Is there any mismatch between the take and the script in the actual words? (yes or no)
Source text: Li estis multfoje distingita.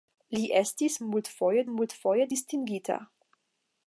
yes